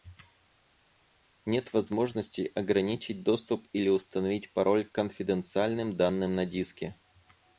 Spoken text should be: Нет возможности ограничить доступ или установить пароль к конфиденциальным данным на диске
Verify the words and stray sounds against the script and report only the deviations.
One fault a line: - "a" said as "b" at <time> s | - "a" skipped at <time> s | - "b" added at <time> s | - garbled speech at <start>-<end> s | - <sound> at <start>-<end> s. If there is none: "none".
none